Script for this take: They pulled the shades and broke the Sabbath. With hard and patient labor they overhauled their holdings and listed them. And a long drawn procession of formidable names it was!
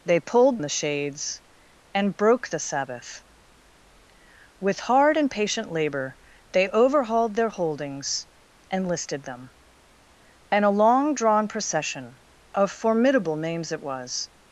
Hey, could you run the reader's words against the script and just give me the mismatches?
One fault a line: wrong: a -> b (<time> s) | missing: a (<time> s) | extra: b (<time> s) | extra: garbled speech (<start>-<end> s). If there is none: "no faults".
no faults